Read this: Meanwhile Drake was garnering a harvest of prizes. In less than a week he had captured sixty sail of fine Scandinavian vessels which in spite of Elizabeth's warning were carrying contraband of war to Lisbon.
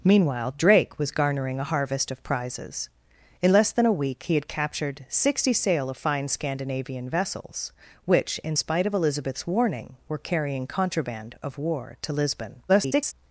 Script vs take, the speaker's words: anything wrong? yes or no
yes